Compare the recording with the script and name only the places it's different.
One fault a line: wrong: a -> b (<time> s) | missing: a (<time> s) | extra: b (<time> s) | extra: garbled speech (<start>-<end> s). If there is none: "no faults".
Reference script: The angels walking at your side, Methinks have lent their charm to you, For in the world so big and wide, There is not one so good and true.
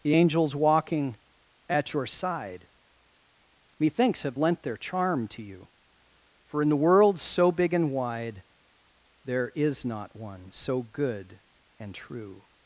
no faults